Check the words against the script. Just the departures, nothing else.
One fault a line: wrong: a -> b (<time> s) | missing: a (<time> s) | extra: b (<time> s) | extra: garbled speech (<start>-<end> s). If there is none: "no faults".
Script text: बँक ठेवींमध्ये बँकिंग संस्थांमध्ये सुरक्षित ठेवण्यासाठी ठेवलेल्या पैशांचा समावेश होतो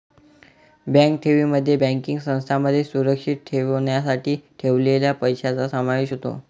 no faults